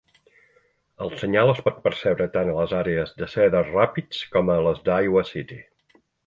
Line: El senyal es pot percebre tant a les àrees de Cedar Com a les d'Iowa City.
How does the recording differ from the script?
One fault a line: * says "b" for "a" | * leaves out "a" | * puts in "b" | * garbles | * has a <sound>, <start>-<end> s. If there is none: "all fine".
* puts in "Rapids"